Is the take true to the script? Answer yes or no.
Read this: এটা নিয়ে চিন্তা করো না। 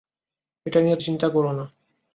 yes